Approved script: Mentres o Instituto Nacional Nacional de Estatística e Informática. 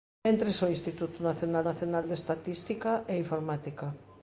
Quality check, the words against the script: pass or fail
pass